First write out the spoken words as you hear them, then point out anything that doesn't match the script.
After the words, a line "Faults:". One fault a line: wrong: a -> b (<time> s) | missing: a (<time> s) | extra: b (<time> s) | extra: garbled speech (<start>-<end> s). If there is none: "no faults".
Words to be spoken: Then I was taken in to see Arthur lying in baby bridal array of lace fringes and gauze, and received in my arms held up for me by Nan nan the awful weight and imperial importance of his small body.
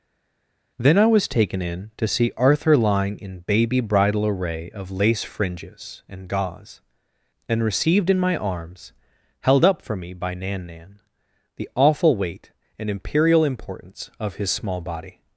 Then I was taken in to see Arthur lying in baby bridal array of lace fringes and gauze, and received in my arms held up for me by Nan nan the awful weight and imperial importance of his small body.
Faults:
no faults